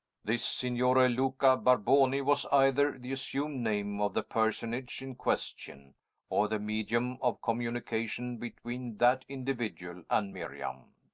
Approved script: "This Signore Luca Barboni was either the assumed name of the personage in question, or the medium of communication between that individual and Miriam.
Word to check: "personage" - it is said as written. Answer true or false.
true